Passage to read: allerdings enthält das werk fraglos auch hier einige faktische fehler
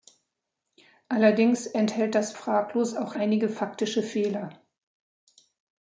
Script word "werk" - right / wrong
wrong